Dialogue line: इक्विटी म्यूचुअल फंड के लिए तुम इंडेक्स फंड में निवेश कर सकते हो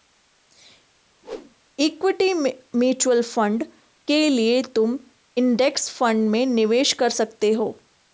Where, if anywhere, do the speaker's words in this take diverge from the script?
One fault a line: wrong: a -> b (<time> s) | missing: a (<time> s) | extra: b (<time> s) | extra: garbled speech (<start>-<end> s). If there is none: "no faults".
no faults